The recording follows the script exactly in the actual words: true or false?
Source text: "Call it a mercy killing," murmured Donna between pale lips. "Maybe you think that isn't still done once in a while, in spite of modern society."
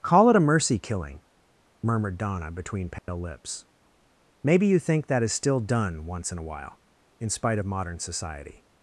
false